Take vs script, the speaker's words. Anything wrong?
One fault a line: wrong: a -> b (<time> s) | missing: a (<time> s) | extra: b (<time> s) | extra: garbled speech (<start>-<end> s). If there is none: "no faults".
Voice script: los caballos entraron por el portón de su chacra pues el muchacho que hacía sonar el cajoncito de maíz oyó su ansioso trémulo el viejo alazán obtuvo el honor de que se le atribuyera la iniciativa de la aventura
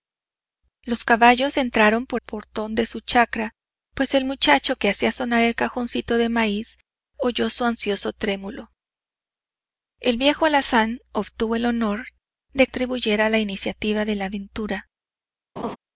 missing: el (2.2 s)
missing: que se le (12.7 s)